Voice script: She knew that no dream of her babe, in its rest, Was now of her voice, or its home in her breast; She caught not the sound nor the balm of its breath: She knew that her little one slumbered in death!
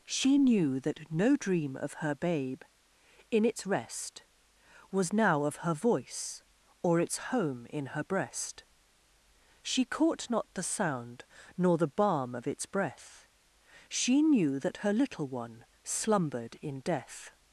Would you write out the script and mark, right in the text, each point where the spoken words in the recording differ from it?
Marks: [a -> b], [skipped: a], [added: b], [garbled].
She knew that no dream of her babe, in its rest, Was now of her voice, or its home in her breast; She caught not the sound nor the balm of its breath: She knew that her little one slumbered in death!